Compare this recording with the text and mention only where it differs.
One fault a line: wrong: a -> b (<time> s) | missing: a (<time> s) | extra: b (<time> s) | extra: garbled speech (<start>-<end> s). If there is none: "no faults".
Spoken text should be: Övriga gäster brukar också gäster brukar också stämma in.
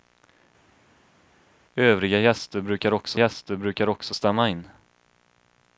no faults